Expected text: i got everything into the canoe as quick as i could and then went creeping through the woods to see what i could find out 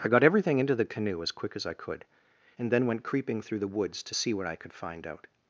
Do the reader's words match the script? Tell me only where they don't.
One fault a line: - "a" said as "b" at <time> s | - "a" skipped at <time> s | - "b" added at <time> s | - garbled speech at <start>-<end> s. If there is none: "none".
none